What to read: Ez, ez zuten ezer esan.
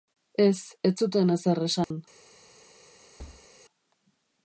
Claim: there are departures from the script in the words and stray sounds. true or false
true